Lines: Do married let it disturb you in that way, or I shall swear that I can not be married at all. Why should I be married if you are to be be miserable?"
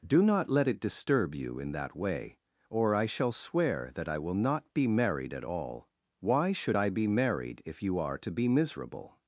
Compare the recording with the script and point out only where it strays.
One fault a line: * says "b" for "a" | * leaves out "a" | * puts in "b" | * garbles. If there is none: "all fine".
* says "not" for "married"
* says "will" for "can"
* leaves out "be"